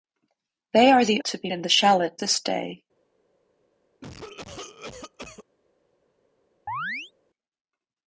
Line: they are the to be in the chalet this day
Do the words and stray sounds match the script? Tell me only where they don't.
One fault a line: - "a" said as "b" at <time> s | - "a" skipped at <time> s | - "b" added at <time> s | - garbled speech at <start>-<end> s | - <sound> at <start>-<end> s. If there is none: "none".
- cough at 4.0-5.4 s
- chirp at 6.7-7.1 s